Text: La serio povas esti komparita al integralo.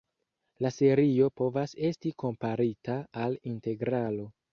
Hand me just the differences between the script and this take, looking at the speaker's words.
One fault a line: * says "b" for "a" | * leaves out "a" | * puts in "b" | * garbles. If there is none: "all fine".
all fine